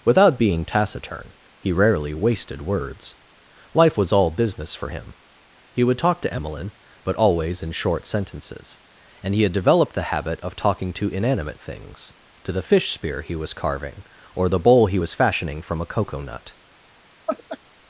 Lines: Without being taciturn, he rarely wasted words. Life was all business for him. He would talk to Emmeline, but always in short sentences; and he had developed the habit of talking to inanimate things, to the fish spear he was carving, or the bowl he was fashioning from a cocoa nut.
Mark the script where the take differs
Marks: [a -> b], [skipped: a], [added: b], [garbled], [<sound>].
Without being taciturn, he rarely wasted words. Life was all business for him. He would talk to Emmeline, but always in short sentences; and he had developed the habit of talking to inanimate things, to the fish spear he was carving, or the bowl he was fashioning from a cocoa nut. [laugh]